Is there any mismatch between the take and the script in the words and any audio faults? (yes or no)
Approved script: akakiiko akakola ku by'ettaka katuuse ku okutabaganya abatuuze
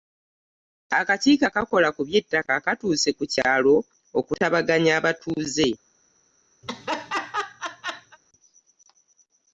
yes